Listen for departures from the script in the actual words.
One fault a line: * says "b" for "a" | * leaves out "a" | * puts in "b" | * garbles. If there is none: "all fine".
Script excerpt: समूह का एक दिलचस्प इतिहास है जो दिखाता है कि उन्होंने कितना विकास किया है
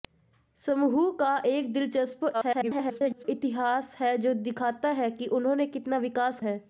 * garbles
* leaves out "किया"